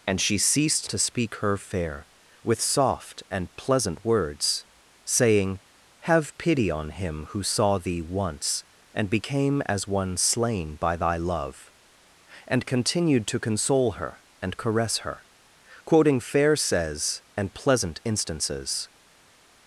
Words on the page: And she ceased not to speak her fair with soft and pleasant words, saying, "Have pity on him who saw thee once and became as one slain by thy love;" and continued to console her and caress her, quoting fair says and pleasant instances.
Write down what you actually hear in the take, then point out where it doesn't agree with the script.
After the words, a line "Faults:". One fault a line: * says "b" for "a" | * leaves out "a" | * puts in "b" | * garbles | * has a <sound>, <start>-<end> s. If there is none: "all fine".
And she ceased to speak her fair with soft and pleasant words, saying, "Have pity on him who saw thee once and became as one slain by thy love;" and continued to console her and caress her, quoting fair says and pleasant instances.
Faults:
* leaves out "not"